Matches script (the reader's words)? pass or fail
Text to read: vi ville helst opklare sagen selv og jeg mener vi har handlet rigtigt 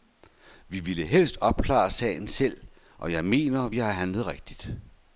pass